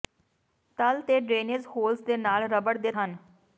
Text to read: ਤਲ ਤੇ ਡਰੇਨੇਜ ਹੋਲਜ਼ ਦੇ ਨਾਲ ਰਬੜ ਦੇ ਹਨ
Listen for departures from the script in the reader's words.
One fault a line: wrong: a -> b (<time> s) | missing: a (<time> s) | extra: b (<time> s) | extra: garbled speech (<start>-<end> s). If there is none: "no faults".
no faults